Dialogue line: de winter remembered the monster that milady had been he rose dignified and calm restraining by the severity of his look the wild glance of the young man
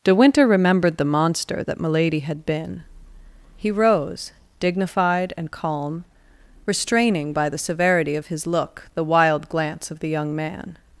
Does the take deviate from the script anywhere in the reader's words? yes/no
no